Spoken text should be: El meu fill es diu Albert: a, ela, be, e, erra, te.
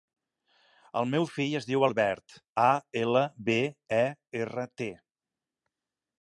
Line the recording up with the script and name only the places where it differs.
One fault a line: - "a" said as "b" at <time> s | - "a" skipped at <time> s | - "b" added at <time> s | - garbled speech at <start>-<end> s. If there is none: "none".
none